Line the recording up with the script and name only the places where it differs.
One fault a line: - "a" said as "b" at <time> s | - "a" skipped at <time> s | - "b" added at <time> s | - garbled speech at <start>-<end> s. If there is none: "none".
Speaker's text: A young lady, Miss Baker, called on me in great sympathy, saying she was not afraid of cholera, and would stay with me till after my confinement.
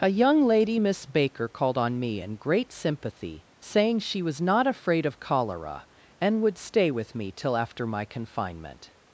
none